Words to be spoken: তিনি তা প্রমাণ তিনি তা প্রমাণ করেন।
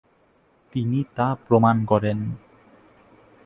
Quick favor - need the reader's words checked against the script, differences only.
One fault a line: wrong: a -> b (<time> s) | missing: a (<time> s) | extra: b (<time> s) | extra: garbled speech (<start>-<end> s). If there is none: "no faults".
missing: তিনি তা প্রমাণ (1.9 s)